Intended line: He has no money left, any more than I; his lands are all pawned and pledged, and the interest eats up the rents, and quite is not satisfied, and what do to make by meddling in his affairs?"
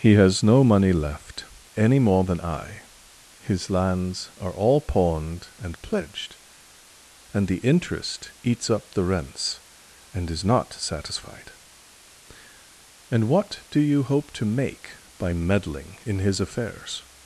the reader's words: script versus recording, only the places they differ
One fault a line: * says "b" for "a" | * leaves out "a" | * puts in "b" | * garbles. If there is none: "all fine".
* leaves out "quite"
* puts in "you hope"